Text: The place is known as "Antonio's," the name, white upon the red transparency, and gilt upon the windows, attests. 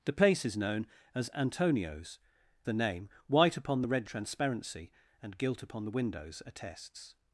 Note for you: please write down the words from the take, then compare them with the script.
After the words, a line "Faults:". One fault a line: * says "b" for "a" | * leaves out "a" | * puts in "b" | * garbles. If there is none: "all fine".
The place is known as "Antonio's," the name, white upon the red transparency, and gilt upon the windows, attests.
Faults:
all fine